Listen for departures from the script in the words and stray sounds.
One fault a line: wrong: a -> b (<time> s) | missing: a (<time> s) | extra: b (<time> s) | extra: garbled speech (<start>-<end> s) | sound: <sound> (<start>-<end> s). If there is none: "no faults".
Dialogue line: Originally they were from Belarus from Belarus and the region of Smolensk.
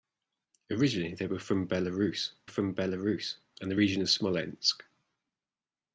no faults